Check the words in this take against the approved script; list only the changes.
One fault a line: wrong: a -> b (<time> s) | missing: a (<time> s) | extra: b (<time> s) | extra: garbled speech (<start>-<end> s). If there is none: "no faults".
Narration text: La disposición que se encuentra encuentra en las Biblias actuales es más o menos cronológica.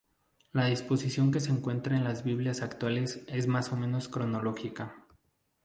missing: encuentra (2.0 s)